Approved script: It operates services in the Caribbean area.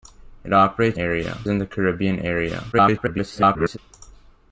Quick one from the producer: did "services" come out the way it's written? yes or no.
no